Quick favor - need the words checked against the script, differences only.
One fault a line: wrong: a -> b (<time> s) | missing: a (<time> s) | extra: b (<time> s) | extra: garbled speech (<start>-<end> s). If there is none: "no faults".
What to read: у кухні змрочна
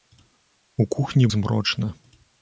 no faults